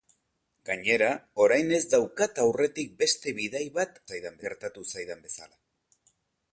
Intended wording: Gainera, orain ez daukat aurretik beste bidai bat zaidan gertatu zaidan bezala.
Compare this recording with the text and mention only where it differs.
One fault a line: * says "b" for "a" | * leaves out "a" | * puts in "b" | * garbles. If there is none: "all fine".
all fine